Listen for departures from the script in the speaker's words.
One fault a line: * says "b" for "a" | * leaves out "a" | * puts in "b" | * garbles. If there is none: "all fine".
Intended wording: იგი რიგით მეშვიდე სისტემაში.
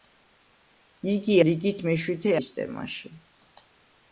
all fine